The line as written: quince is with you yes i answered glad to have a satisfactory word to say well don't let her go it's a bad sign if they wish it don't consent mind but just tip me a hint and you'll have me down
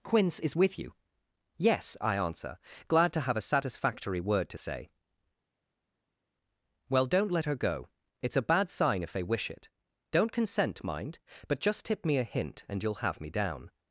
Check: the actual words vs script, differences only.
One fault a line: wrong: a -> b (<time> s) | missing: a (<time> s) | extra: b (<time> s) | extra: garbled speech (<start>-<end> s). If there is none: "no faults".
wrong: answered -> answer (2.2 s)